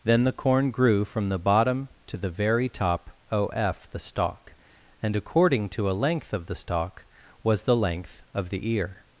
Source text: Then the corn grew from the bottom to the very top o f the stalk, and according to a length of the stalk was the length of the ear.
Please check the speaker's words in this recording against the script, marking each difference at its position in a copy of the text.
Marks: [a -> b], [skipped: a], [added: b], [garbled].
Then the corn grew from the bottom to the very top o f the stalk, and according to a length of the stalk was the length of the ear.